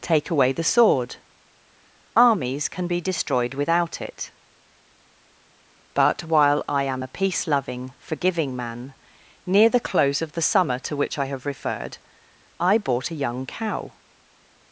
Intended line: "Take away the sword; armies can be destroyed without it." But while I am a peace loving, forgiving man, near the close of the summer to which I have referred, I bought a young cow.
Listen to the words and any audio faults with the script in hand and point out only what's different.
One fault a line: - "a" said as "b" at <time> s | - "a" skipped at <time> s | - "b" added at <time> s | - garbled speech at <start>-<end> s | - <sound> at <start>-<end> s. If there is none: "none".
none